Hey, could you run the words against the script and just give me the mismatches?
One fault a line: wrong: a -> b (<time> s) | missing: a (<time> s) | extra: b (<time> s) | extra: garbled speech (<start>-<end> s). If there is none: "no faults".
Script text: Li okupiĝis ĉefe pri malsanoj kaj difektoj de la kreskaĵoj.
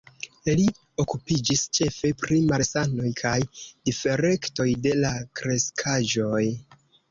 no faults